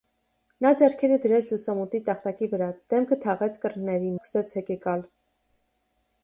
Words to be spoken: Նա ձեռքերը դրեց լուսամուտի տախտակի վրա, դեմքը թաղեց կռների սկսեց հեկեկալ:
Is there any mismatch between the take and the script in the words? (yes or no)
no